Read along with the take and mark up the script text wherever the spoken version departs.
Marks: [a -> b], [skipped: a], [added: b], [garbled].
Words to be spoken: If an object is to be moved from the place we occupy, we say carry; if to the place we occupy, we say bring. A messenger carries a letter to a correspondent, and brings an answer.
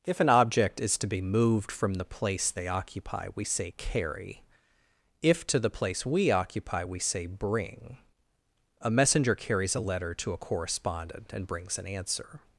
If an object is to be moved from the place [we -> they] occupy, we say carry; if to the place we occupy, we say bring. A messenger carries a letter to a correspondent, and brings an answer.